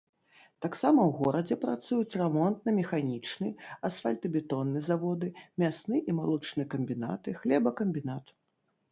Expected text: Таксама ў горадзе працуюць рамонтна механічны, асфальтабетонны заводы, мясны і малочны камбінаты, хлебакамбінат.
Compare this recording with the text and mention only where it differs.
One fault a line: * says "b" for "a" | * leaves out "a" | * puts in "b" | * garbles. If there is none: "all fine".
all fine